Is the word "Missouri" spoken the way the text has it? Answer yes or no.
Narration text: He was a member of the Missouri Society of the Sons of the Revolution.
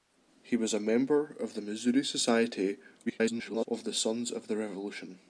yes